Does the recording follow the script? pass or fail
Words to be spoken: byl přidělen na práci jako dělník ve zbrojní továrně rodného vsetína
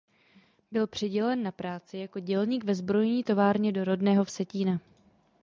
fail